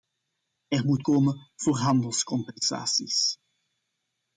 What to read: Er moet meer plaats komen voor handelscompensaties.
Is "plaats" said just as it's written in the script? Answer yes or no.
no